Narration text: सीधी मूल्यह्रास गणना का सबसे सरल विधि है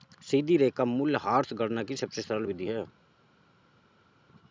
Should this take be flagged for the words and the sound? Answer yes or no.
yes